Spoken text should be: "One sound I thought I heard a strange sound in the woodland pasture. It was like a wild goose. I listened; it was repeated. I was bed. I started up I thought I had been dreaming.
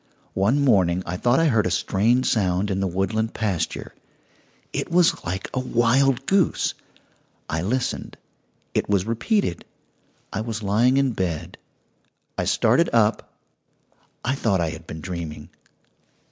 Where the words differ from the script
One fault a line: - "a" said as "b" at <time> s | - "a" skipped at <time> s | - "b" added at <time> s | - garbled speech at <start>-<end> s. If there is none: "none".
- "sound" said as "morning" at 0.7 s
- "lying in" added at 10.6 s